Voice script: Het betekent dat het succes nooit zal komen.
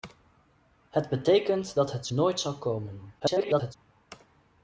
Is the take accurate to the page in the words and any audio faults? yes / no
no